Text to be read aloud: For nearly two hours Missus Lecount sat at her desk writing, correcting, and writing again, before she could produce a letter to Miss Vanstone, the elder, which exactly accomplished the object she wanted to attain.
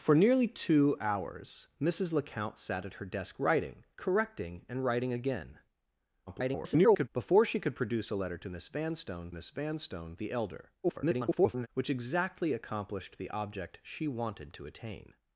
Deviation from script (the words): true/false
true